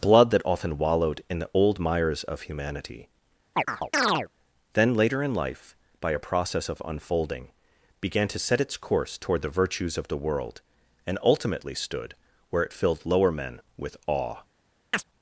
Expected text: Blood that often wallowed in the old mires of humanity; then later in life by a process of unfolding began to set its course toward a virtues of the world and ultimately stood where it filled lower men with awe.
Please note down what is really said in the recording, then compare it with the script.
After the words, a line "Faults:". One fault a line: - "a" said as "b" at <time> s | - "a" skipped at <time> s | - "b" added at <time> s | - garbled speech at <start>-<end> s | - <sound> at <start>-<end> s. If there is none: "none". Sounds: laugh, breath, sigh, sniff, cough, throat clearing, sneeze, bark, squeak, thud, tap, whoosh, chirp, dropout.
Blood that often wallowed in the old mires of humanity; then later in life by a process of unfolding began to set its course toward the virtues of the world and ultimately stood where it filled lower men with awe.
Faults:
- chirp at 3.5-4.3 s
- "a" said as "the" at 9.4 s
- chirp at 14.9-15.0 s